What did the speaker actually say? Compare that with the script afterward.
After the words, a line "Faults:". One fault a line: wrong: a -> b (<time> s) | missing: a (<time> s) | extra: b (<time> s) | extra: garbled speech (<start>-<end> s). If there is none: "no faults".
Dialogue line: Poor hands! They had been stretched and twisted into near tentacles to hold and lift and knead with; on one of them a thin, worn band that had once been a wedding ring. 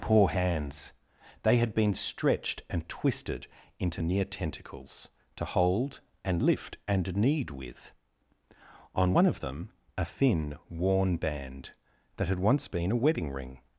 Poor hands! They had been stretched and twisted into near tentacles to hold and lift and knead with; on one of them a thin, worn band that had once been a wedding ring.
Faults:
no faults